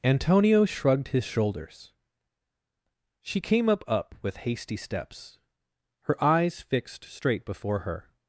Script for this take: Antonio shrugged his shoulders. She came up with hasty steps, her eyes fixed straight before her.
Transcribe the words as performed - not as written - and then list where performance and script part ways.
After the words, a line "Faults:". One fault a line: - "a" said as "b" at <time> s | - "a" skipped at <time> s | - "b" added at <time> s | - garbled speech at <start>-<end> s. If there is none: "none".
Antonio shrugged his shoulders. She came up up with hasty steps, her eyes fixed straight before her.
Faults:
- "up" added at 3.9 s